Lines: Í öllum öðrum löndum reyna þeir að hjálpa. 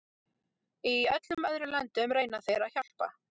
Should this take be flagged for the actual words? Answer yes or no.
no